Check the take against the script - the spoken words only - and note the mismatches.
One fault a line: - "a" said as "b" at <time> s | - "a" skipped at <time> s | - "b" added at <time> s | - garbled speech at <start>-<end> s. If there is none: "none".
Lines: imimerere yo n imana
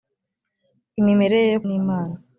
none